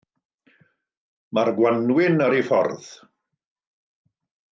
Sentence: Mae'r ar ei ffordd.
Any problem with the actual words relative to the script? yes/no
yes